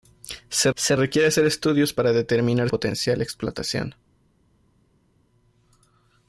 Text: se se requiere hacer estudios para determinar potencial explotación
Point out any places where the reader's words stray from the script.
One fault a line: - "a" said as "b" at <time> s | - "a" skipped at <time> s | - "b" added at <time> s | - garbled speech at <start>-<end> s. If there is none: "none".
none